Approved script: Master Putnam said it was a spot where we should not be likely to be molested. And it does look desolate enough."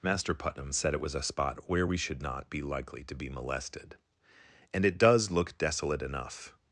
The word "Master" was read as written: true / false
true